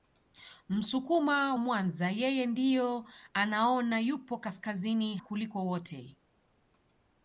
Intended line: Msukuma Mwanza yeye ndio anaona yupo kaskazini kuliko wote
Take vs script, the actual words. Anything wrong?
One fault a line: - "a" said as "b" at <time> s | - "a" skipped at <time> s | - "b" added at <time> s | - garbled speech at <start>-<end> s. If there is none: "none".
none